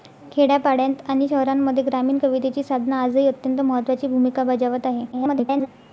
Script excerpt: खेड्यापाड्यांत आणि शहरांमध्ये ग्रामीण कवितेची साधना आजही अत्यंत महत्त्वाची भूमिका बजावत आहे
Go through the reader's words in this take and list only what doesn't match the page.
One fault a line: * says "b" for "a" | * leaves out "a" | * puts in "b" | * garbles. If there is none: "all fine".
* garbles